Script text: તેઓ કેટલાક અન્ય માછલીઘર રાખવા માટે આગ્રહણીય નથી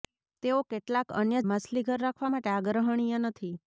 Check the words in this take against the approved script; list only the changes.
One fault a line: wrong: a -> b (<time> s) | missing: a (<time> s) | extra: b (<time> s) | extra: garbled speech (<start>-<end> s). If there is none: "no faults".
no faults